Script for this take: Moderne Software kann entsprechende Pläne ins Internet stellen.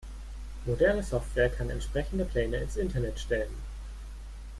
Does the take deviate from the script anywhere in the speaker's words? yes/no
no